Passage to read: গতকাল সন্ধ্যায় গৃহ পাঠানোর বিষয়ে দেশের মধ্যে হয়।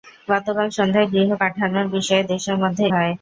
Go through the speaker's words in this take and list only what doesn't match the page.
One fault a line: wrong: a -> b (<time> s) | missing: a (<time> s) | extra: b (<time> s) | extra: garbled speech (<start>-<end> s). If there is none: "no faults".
no faults